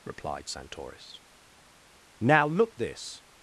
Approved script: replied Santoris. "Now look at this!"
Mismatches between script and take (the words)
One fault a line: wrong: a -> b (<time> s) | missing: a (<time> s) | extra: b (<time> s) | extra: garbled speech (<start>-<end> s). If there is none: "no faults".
missing: at (2.8 s)